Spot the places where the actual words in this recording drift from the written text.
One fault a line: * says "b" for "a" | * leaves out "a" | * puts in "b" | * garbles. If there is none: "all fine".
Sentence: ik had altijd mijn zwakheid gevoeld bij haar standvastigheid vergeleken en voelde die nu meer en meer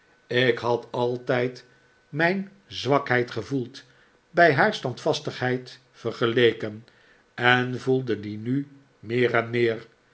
all fine